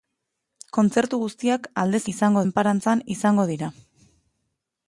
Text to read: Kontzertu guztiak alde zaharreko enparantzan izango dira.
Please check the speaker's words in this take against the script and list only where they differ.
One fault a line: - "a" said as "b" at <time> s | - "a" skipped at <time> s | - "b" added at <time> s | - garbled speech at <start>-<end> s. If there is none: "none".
- "zaharreko" said as "izango" at 2.1 s